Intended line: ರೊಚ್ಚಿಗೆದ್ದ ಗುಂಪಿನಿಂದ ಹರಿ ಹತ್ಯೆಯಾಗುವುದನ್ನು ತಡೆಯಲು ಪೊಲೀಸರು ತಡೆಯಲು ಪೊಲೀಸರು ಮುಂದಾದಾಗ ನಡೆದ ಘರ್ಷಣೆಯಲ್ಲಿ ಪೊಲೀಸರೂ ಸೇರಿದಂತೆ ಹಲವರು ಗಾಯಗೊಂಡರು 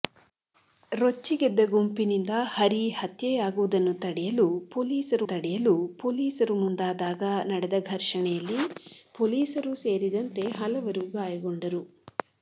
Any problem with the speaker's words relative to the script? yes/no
no